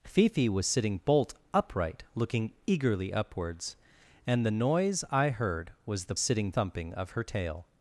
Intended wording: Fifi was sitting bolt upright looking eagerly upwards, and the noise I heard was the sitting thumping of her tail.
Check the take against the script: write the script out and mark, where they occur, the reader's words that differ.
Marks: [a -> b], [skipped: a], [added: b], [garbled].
Fifi was sitting bolt upright looking eagerly upwards, and the noise I heard was the sitting thumping of her tail.